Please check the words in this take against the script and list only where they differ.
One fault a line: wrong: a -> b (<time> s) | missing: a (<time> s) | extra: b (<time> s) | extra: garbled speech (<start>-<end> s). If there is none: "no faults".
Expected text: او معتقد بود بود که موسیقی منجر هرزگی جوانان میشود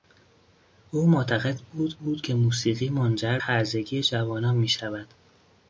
no faults